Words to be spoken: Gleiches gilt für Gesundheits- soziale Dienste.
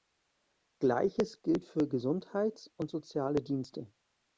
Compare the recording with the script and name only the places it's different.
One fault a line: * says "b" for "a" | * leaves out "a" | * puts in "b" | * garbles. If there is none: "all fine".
* puts in "und"